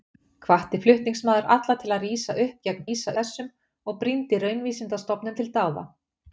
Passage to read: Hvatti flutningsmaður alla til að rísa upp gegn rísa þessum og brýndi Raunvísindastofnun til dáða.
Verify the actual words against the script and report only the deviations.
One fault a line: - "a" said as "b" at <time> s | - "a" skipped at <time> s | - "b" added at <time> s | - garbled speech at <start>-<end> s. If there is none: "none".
none